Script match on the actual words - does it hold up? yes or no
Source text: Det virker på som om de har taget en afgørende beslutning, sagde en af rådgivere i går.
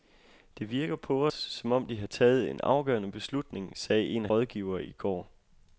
yes